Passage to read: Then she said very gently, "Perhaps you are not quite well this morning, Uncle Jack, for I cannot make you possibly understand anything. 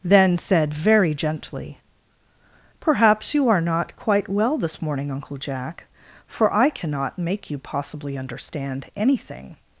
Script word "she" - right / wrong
wrong